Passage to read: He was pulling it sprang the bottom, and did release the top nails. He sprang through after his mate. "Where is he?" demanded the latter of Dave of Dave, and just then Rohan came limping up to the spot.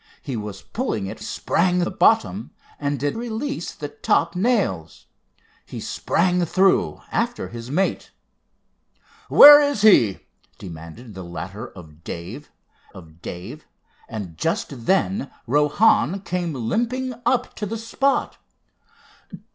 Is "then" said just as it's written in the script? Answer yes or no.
yes